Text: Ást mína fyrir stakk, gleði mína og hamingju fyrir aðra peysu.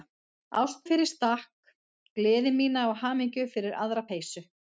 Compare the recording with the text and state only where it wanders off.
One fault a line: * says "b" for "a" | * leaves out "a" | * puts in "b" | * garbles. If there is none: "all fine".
* leaves out "mína"